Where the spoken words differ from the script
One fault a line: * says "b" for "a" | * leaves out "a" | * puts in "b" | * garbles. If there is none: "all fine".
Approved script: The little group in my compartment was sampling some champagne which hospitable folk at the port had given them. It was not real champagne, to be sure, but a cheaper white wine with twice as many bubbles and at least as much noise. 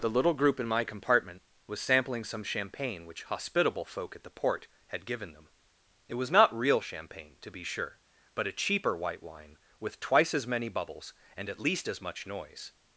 all fine